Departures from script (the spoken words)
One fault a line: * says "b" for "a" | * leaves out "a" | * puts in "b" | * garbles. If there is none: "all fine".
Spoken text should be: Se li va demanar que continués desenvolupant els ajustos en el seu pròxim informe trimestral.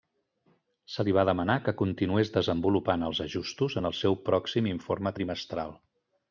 all fine